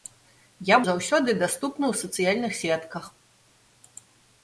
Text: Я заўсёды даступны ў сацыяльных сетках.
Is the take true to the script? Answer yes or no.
yes